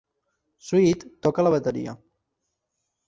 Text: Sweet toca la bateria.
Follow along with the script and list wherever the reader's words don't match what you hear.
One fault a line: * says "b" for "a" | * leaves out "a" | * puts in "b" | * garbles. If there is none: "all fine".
all fine